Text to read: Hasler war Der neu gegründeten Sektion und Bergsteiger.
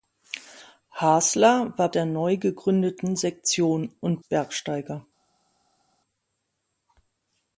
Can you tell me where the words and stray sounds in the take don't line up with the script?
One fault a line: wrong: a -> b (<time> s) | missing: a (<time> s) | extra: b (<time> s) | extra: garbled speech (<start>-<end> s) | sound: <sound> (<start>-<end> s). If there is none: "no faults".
no faults